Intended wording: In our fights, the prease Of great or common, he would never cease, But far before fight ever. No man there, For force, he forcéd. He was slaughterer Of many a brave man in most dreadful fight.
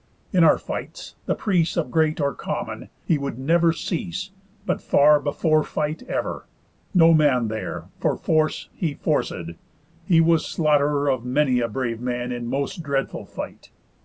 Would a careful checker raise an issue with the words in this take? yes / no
no